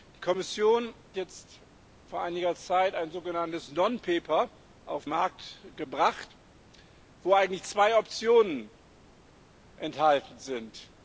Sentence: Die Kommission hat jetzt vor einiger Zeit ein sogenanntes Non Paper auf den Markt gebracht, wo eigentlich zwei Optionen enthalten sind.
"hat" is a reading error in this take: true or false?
true